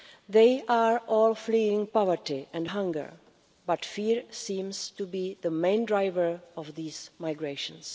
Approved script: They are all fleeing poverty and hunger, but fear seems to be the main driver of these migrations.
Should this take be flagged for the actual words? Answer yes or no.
no